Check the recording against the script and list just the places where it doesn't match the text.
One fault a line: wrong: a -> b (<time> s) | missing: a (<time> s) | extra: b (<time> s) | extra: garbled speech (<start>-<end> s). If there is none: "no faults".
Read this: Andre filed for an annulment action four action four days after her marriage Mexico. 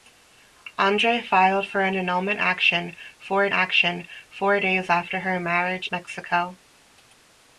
no faults